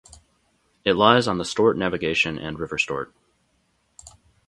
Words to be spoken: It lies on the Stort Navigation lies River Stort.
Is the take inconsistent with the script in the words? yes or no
yes